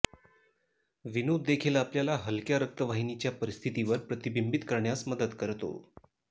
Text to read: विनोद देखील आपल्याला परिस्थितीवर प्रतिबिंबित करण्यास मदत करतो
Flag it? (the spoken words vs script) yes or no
yes